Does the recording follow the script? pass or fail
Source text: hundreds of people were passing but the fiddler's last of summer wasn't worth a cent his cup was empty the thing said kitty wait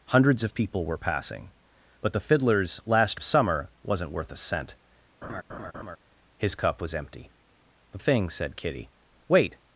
pass